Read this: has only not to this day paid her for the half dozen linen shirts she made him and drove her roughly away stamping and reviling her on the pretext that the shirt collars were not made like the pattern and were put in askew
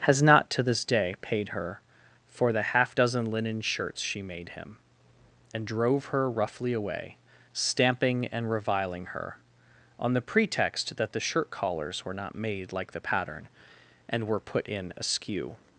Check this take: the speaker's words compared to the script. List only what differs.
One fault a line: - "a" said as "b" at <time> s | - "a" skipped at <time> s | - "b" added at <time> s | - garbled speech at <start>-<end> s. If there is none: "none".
- "only" skipped at 0.2 s